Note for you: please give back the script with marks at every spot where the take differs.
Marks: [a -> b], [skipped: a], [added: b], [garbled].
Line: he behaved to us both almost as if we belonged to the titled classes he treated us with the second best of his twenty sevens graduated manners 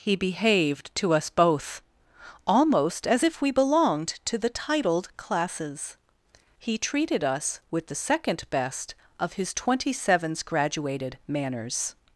he behaved to us both almost as if we belonged to the titled classes he treated us with the second best of his twenty sevens graduated manners